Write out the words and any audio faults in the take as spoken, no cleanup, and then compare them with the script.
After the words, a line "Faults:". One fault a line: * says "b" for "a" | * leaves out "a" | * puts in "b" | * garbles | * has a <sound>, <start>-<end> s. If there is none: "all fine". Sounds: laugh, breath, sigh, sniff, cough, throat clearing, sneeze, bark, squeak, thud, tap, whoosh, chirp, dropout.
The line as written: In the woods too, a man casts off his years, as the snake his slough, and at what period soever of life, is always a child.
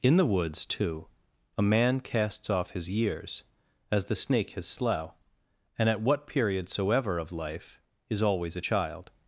In the woods too, a man casts off his years, as the snake his slough, and at what period soever of life, is always a child.
Faults:
all fine